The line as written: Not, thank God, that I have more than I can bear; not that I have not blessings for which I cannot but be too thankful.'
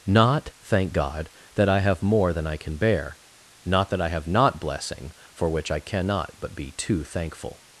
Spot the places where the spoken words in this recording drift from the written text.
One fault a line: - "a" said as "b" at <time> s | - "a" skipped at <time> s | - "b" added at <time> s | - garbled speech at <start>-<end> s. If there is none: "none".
- "blessings" said as "blessing" at 4.6 s